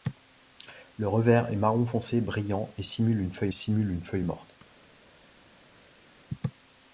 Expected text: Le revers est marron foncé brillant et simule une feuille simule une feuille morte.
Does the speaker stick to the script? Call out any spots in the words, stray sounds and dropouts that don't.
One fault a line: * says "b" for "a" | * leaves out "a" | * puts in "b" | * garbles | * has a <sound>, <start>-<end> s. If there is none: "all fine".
all fine